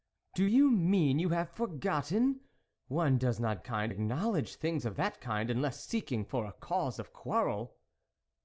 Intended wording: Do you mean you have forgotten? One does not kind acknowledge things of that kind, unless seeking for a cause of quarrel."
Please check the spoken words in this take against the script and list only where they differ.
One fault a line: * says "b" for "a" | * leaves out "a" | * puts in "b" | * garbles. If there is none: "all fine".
all fine